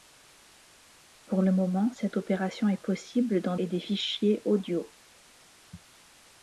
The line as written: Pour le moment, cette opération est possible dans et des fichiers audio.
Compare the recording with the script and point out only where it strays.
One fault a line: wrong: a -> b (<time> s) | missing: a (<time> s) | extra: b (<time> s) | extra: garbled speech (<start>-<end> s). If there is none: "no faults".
no faults